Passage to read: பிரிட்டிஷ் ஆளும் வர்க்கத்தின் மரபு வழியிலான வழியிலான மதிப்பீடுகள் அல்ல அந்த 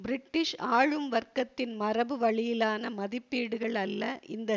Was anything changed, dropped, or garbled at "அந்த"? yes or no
yes